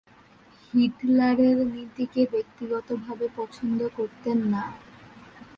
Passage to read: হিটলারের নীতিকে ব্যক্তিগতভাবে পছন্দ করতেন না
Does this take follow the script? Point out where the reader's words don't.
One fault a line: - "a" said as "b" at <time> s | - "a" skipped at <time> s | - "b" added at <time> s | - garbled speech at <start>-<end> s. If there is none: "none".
none